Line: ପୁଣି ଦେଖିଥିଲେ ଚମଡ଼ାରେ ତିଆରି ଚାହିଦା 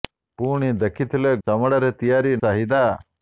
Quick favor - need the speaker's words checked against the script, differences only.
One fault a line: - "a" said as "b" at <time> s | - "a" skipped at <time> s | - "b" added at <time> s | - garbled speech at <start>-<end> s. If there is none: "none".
none